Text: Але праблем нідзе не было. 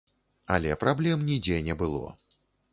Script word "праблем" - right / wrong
right